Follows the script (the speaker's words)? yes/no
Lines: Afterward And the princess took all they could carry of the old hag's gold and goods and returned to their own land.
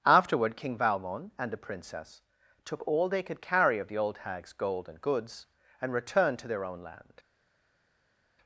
no